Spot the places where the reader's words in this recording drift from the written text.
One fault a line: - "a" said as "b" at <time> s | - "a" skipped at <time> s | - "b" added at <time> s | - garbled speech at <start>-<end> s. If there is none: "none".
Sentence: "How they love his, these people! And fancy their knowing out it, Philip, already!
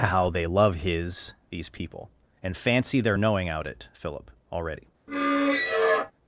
none